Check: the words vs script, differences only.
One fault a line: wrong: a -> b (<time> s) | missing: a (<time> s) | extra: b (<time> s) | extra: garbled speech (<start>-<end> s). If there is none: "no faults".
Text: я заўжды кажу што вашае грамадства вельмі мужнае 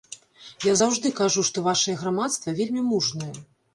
no faults